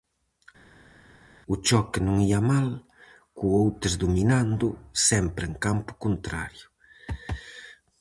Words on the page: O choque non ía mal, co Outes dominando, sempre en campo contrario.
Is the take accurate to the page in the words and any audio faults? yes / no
yes